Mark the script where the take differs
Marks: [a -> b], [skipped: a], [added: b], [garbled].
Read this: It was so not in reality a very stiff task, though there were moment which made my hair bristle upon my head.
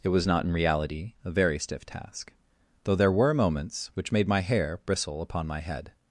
It was [skipped: so] not in reality a very stiff task, though there were [moment -> moments] which made my hair bristle upon my head.